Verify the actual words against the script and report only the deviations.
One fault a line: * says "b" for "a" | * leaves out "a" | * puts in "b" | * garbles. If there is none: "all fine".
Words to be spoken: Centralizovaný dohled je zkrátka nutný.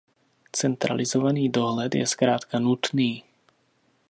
all fine